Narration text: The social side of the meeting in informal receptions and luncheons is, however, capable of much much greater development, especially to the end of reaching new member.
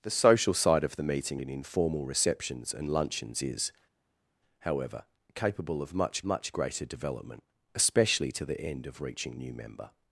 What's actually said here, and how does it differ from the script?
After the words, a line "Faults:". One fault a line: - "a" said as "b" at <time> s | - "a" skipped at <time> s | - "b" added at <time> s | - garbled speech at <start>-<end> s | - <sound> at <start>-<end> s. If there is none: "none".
The social side of the meeting in informal receptions and luncheons is, however, capable of much much greater development, especially to the end of reaching new member.
Faults:
none